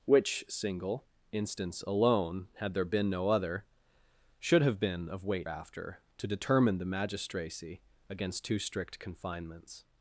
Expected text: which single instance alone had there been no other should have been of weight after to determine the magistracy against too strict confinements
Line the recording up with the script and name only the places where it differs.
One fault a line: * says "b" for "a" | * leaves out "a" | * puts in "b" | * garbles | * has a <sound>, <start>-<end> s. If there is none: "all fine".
all fine